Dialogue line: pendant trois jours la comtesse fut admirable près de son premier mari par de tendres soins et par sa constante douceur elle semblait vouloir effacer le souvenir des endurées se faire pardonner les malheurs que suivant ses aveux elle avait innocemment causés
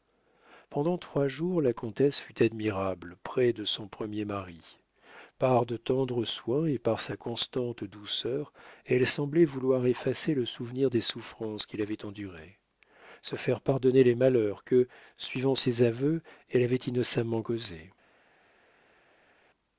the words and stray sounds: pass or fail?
fail